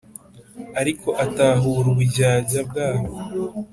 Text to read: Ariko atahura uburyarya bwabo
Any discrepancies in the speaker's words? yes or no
no